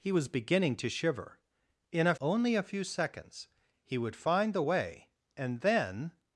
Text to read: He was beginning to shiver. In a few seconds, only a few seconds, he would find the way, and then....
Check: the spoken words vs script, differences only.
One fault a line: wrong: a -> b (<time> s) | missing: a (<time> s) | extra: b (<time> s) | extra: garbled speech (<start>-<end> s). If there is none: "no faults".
missing: few seconds (2.1 s)